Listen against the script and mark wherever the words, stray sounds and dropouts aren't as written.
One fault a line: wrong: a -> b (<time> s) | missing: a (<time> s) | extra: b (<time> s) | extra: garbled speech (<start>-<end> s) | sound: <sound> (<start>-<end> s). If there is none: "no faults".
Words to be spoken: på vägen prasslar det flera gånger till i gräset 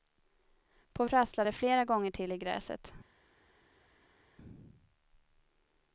missing: vägen (1.1 s)